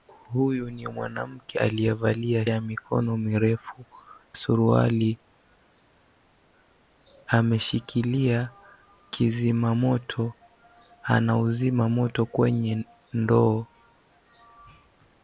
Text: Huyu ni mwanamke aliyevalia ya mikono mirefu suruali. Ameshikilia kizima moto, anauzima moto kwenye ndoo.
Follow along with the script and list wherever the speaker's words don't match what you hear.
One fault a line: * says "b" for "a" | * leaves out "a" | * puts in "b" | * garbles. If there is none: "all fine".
all fine